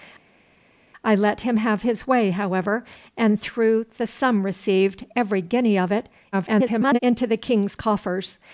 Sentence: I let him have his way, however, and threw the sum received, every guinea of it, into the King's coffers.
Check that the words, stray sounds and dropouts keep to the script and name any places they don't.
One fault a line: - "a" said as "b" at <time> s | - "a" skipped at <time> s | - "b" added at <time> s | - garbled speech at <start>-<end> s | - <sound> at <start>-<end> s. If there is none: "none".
- garbled speech at 6.3-7.0 s